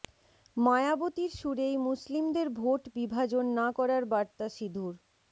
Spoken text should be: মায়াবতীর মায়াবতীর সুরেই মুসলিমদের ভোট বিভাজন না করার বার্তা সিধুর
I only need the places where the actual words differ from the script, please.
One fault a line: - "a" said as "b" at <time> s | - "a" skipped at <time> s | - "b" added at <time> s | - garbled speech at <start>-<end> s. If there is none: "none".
- "মায়াবতীর" skipped at 1.3 s